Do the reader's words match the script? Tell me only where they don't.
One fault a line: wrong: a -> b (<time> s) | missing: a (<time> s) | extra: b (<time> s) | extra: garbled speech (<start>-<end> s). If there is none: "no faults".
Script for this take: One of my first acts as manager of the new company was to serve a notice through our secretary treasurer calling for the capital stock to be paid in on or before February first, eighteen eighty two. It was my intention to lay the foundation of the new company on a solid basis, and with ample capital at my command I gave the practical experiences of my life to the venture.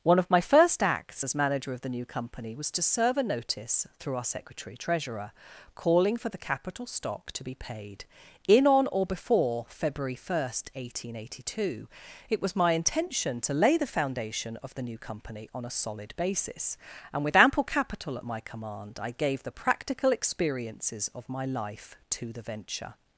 no faults